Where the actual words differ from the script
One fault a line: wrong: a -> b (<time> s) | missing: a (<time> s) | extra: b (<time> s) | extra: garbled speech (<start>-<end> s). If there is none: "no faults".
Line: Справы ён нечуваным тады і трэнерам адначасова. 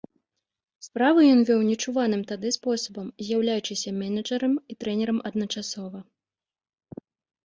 extra: вёў (1.5 s)
extra: спосабам з'яўляючыся менеджарам (2.5 s)